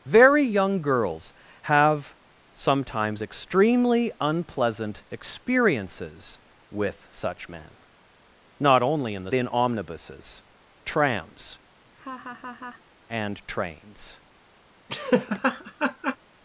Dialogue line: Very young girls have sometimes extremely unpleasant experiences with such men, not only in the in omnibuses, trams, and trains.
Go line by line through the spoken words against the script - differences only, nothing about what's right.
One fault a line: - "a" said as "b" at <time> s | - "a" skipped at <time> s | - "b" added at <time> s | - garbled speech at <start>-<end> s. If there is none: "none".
none